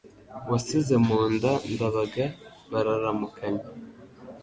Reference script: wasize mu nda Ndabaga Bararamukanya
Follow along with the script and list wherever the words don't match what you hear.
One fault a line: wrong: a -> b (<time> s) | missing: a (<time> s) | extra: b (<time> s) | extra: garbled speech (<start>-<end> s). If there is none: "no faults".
no faults